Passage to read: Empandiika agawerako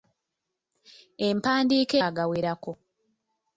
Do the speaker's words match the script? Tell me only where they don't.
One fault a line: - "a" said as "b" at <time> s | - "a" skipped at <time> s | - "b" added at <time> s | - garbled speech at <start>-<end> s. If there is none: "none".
none